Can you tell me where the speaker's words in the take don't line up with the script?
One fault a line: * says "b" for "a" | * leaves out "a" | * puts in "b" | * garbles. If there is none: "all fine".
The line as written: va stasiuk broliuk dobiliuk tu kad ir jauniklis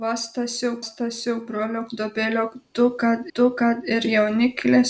* puts in "stasiuk"
* puts in "tu kad"